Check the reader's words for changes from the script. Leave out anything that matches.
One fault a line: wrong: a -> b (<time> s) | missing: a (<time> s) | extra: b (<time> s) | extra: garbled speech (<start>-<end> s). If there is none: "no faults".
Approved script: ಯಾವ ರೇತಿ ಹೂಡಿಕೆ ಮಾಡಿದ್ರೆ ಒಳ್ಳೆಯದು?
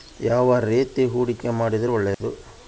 no faults